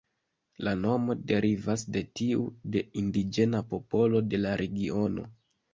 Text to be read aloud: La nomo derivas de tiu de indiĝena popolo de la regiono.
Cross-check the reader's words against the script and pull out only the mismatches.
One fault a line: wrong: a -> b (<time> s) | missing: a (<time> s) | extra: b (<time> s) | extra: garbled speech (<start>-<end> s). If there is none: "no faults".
no faults